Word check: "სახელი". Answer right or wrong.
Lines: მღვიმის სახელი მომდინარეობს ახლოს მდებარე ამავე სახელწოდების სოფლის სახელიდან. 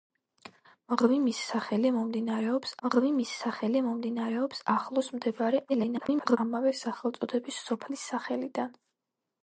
right